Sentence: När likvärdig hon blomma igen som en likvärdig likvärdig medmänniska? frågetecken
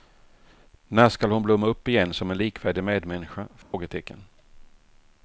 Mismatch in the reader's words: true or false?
true